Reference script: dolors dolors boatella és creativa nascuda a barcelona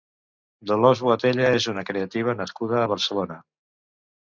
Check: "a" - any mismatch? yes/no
no